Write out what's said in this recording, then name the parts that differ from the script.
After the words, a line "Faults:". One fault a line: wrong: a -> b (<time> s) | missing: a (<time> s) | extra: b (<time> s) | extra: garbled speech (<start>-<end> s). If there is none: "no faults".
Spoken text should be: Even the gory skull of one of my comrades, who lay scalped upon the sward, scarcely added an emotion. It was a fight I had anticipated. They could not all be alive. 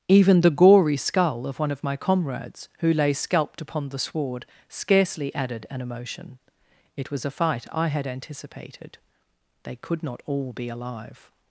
Even the gory skull of one of my comrades, who lay scalped upon the sward, scarcely added an emotion. It was a fight I had anticipated. They could not all be alive.
Faults:
no faults